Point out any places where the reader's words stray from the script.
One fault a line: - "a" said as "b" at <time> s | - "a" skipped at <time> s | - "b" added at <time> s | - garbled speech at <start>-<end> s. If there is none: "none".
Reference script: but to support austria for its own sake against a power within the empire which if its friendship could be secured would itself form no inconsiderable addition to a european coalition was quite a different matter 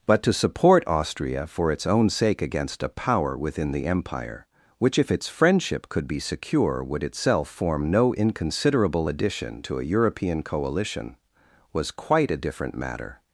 - "secured" said as "secure" at 6.2 s